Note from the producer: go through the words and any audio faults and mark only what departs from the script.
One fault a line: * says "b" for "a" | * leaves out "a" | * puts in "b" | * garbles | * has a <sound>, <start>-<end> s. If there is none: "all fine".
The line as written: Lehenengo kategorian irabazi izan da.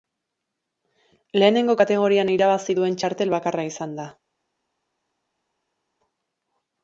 * puts in "duen txartel bakarra"